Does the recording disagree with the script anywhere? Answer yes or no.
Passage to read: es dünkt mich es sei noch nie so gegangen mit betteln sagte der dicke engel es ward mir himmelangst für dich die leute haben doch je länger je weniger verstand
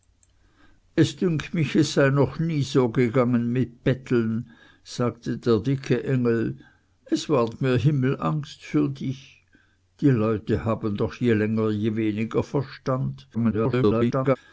yes